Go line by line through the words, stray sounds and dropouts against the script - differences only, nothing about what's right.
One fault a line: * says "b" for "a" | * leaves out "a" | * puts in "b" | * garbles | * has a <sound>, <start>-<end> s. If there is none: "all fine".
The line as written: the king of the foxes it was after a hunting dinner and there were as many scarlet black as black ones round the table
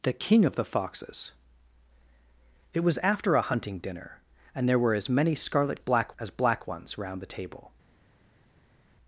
all fine